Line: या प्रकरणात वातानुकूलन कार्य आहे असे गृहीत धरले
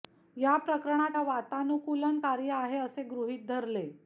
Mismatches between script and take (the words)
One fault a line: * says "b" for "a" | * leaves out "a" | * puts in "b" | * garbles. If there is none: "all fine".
all fine